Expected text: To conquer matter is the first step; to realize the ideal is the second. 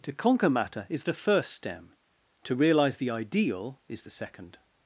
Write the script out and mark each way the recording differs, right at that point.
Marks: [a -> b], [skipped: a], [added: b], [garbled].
To conquer matter is the first [step; -> stem] to realize the ideal is the second.